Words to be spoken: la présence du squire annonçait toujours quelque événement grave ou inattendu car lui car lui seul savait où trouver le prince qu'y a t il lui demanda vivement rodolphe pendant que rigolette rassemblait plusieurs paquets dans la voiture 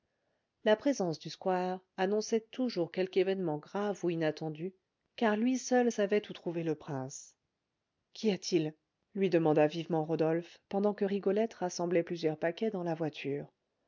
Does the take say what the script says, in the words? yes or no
no